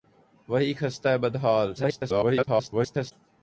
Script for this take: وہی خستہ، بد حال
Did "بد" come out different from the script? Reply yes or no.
no